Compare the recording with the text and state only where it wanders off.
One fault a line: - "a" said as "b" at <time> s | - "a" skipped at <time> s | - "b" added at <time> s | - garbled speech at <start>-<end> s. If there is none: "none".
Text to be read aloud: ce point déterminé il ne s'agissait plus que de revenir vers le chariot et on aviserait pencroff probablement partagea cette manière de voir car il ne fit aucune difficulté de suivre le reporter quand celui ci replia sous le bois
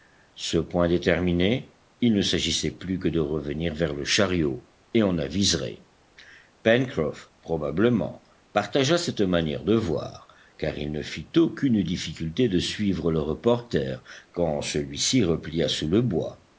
none